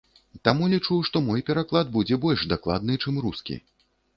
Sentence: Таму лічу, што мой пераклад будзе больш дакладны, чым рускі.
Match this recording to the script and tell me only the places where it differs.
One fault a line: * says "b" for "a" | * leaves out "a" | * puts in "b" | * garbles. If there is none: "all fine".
all fine